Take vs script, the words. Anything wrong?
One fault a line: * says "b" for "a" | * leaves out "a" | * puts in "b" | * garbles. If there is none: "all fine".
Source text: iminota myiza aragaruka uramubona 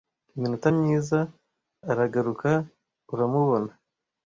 all fine